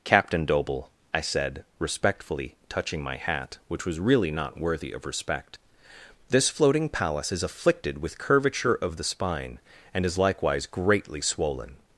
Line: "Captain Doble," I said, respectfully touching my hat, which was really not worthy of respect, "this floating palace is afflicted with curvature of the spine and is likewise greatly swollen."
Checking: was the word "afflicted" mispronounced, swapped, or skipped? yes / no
no